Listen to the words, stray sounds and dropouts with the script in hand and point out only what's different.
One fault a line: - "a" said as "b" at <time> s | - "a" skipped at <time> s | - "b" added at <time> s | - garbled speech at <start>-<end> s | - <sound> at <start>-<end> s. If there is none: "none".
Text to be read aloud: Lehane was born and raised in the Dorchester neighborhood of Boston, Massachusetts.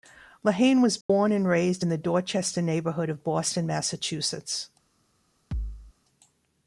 - dropout at 1.0-1.1 s
- thud at 5.5-5.9 s